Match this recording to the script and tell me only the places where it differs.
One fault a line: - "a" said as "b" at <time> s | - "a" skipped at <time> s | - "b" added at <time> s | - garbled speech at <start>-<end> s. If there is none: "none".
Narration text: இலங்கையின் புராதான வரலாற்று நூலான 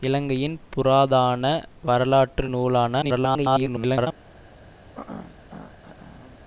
- garbled speech at 3.0-4.1 s